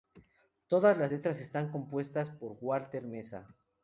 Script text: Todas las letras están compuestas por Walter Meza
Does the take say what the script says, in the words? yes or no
yes